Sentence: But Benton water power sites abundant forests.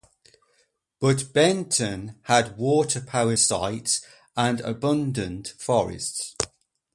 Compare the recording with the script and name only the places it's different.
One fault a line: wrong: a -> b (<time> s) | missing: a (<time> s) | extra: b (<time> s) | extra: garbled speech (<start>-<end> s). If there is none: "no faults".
extra: had (2.2 s)
extra: and (4.4 s)